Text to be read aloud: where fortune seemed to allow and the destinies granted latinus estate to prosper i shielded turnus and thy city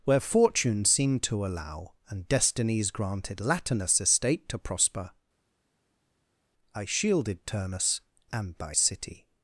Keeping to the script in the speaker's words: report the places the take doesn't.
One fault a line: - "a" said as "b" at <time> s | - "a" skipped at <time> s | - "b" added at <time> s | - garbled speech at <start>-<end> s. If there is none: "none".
- "the" skipped at 2.3 s